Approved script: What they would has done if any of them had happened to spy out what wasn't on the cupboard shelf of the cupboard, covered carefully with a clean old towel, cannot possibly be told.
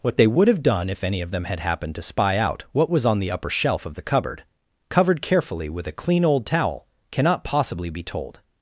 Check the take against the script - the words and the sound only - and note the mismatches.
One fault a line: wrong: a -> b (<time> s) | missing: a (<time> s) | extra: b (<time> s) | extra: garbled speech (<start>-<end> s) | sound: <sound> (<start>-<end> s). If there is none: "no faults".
wrong: has -> have (0.5 s)
wrong: wasn't -> was (2.9 s)
wrong: cupboard -> upper (3.3 s)